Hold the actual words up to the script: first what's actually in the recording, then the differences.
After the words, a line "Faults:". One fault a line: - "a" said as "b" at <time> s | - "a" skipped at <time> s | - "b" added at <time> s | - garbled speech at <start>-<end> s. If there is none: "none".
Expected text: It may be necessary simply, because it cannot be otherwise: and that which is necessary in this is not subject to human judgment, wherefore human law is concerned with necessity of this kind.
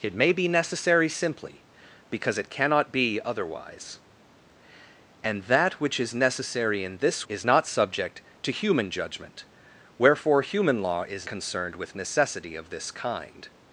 It may be necessary simply, because it cannot be otherwise: and that which is necessary in this is not subject to human judgment, wherefore human law is concerned with necessity of this kind.
Faults:
none